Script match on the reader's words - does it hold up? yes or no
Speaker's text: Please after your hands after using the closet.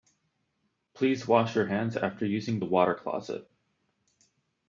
no